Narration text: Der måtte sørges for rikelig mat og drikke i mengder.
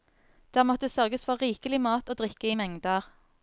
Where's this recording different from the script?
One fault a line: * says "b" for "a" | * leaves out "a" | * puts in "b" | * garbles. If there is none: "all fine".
all fine